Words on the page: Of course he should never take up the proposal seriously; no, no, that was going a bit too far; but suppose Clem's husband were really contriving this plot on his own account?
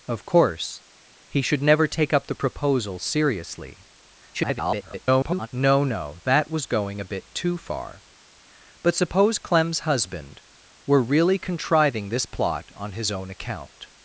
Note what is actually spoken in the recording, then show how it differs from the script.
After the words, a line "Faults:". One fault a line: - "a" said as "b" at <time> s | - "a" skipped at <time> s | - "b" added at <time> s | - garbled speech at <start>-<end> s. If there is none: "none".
Of course he should never take up the proposal seriously; [garbled] no, no, that was going a bit too far; but suppose Clem's husband were really contriving this plot on his own account?
Faults:
- garbled speech at 4.3-5.5 s